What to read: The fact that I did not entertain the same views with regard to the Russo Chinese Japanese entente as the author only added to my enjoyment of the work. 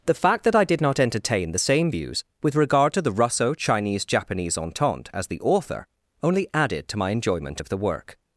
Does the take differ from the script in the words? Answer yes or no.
no